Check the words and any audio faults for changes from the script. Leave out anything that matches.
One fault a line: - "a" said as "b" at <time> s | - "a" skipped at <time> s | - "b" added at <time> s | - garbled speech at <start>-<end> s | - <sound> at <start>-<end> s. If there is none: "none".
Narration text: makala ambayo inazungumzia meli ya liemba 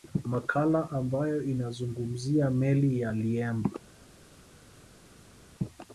none